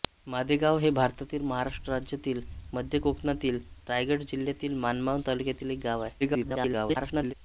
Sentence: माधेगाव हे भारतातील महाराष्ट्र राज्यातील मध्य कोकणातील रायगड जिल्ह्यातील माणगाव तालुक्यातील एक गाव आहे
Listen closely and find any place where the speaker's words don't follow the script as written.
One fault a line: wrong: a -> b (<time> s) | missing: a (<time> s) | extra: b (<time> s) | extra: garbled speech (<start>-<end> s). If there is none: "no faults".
extra: garbled speech (6.2-7.3 s)